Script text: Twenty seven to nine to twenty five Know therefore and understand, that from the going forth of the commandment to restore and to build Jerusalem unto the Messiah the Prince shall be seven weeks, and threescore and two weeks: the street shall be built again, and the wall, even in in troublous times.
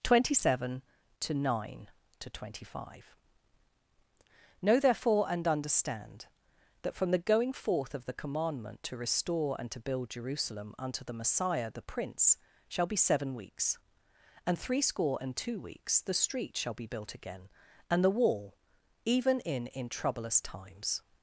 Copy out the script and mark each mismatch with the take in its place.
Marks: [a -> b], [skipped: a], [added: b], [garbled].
Twenty seven to nine to twenty five Know therefore and understand, that from the going forth of the commandment to restore and to build Jerusalem unto the Messiah the Prince shall be seven weeks, and threescore and two weeks: the street shall be built again, and the wall, even in in troublous times.